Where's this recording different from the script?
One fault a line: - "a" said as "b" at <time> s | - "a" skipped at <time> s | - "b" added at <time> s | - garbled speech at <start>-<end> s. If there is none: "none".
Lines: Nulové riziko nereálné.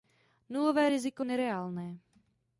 none